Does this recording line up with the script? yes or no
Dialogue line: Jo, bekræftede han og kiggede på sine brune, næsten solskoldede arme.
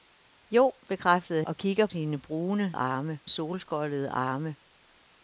no